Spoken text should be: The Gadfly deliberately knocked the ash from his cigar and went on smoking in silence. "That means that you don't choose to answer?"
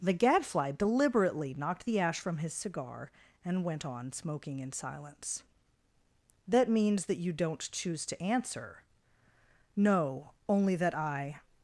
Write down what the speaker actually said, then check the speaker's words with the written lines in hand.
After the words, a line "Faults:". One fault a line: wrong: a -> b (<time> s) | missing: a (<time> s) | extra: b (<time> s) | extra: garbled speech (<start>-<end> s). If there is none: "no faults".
The Gadfly deliberately knocked the ash from his cigar and went on smoking in silence. "That means that you don't choose to answer?" "No; only that I
Faults:
extra: No only that I (9.8 s)